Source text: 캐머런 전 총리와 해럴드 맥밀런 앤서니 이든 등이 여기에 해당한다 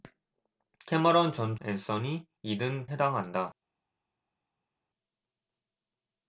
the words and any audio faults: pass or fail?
fail